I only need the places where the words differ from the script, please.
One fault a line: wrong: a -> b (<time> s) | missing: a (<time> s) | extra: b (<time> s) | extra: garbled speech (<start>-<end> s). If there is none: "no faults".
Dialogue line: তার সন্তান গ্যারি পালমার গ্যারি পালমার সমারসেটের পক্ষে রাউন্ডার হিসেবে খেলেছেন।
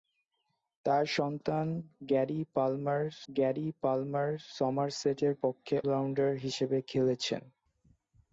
no faults